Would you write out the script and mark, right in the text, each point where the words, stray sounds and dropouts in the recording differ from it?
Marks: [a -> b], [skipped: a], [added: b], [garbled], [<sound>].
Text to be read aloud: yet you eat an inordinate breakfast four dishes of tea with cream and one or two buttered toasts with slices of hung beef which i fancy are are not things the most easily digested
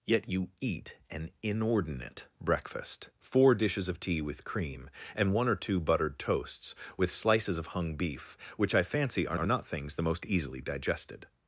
yet you eat an inordinate breakfast four dishes of tea with cream and one or two buttered toasts with slices of hung beef which i fancy are are not things the most easily digested